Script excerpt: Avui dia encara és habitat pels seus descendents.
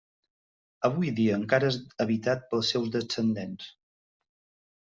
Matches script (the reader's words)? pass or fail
pass